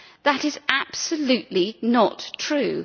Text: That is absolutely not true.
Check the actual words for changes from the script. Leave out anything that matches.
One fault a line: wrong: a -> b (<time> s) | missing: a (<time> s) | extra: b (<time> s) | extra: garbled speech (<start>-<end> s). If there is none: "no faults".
no faults